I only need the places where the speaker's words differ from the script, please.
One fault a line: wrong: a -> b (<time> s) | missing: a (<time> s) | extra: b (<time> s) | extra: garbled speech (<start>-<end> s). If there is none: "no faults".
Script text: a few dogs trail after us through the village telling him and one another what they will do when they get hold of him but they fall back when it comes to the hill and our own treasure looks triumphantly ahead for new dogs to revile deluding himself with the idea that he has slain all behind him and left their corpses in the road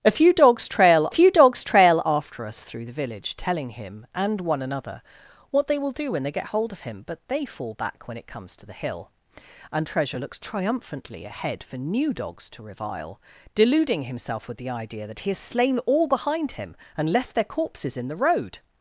extra: few dogs trail (1.1 s)
missing: our own (9.9 s)